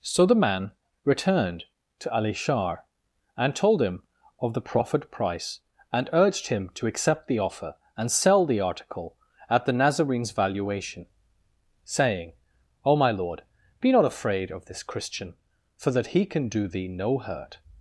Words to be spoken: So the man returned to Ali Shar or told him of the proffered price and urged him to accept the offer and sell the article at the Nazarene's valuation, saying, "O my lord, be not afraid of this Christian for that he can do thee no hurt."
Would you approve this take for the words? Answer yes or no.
no